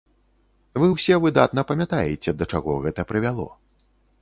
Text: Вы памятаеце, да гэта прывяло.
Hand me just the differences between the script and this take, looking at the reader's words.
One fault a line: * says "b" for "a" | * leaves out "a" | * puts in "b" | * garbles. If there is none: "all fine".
* puts in "ўсе выдатна"
* puts in "чаго"